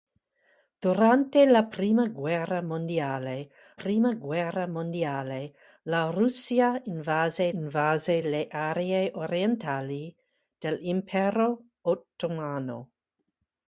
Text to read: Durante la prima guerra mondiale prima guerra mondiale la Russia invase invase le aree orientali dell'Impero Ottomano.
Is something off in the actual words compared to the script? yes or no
no